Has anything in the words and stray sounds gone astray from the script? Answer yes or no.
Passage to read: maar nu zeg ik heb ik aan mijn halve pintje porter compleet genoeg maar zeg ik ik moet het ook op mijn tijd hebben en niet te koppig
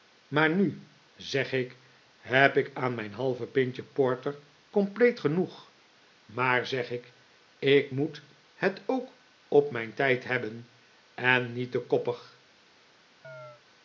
yes